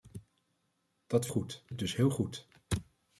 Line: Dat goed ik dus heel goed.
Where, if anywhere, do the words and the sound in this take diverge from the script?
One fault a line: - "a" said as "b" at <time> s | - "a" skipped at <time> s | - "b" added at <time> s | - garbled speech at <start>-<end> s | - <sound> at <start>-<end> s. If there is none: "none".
none